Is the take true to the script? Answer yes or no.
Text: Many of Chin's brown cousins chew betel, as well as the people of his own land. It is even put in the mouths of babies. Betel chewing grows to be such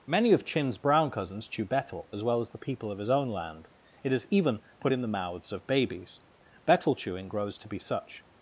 yes